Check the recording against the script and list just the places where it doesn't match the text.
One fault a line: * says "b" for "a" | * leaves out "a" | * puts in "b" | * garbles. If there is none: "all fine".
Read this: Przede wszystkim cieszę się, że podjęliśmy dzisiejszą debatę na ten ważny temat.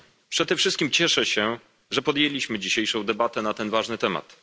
all fine